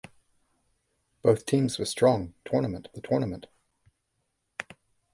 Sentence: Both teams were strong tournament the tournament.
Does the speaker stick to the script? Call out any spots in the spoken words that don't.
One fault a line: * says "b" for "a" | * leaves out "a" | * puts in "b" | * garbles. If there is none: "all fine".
all fine